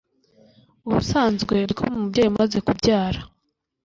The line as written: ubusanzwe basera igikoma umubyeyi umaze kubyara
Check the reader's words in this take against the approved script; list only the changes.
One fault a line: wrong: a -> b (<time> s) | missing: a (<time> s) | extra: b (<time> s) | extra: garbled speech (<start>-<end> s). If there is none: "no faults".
missing: basera (1.6 s)